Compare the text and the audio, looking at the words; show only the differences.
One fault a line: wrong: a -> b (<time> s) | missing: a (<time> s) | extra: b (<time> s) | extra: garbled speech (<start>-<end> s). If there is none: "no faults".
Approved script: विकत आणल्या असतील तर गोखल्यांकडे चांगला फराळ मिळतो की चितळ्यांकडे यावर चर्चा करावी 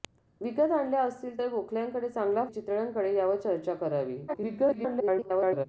missing: फराळ मिळतो की (2.4 s)
extra: garbled speech (4.3-5.7 s)